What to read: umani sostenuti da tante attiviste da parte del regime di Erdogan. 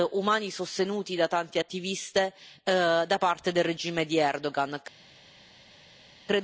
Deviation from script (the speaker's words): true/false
false